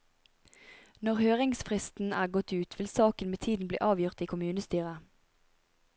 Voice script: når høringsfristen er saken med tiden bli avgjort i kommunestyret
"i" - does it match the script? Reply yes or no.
yes